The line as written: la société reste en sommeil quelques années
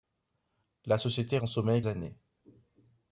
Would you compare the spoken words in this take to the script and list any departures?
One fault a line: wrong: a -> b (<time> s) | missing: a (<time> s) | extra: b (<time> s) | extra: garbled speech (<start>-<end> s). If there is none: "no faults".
missing: reste (1.4 s)
missing: quelques (1.8 s)